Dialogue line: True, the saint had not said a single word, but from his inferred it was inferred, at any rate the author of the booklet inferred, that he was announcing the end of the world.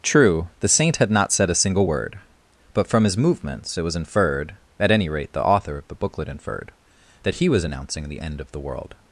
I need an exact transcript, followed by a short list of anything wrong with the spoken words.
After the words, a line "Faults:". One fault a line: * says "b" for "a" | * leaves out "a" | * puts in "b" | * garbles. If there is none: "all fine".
True, the saint had not said a single word, but from his movements it was inferred, at any rate the author of the booklet inferred, that he was announcing the end of the world.
Faults:
* says "movements" for "inferred"